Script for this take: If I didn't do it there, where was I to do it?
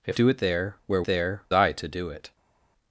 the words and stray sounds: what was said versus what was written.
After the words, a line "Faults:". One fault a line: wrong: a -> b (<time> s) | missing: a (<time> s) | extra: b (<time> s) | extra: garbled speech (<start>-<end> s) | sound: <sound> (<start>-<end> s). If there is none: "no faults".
If do it there, where there I to do it?
Faults:
missing: I didn't (0.2 s)
wrong: was -> there (1.0 s)